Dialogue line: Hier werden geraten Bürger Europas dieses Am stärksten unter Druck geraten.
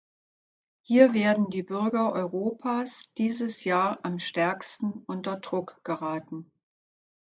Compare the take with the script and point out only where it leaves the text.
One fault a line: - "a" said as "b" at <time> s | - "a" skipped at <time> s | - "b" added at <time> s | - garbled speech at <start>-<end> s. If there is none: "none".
- "geraten" said as "die" at 1.5 s
- "Jahr" added at 3.6 s